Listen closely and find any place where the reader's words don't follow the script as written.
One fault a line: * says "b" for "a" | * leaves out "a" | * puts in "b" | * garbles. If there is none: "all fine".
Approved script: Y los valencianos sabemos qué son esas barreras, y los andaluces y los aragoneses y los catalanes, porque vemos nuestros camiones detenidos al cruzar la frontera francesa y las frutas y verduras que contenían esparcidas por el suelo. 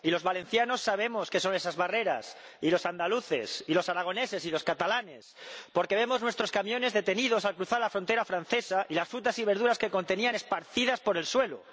all fine